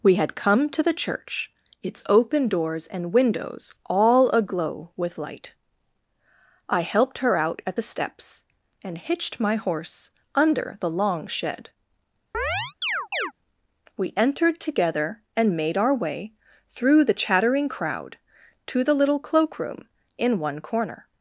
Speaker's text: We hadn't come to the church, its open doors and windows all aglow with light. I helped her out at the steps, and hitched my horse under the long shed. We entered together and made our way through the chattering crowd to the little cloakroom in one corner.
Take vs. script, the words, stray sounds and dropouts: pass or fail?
fail